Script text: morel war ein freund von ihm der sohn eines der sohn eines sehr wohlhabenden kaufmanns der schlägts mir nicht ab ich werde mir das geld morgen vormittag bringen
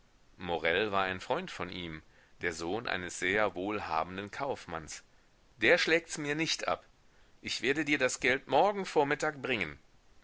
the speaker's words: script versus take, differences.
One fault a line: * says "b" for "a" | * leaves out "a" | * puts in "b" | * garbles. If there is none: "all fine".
* leaves out "der sohn eines"
* says "dir" for "mir"